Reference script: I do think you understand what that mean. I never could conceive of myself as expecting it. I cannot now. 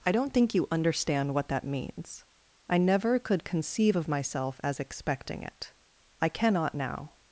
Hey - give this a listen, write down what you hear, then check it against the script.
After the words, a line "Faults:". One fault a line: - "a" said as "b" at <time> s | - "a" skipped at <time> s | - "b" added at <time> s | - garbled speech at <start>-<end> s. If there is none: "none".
I don't think you understand what that means. I never could conceive of myself as expecting it. I cannot now.
Faults:
- "do" said as "don't" at 0.1 s
- "mean" said as "means" at 1.6 s